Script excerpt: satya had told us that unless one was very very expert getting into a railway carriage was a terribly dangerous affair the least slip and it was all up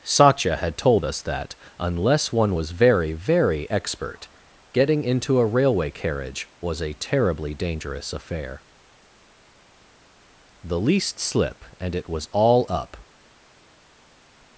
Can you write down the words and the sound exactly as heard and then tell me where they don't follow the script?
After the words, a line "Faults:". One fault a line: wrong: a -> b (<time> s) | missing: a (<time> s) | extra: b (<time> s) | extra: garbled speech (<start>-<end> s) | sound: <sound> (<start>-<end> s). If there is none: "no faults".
satya had told us that unless one was very very expert getting into a railway carriage was a terribly dangerous affair the least slip and it was all up
Faults:
no faults